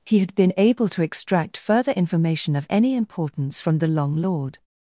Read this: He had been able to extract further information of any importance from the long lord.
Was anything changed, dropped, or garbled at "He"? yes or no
no